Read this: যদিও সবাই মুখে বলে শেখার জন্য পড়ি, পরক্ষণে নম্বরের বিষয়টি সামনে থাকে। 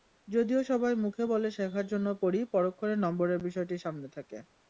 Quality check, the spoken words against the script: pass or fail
pass